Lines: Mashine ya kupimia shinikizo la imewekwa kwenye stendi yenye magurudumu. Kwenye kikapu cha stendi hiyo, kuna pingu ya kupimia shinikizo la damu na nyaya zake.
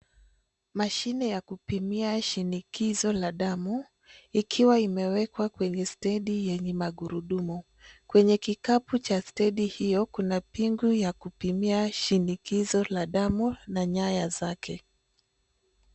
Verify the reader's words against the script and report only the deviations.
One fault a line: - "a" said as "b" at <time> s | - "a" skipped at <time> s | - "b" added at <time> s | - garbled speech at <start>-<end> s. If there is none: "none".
- "damu ikiwa" added at 3.3 s